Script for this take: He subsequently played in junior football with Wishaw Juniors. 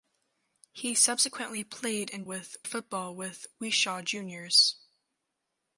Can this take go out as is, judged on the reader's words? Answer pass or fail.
fail